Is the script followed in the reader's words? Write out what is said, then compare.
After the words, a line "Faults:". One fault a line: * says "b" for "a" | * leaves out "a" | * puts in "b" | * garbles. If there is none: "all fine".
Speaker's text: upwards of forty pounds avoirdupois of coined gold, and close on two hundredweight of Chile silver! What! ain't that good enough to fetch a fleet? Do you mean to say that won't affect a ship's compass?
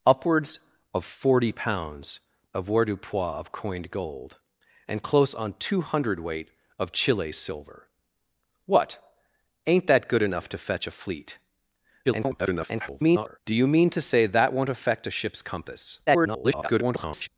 upwards of forty pounds avoirdupois of coined gold, and close on two hundredweight of Chile silver! What! ain't that good enough to fetch a fleet? [garbled] Do you mean to say that won't affect a ship's compass? [garbled]
Faults:
* garbles
* garbles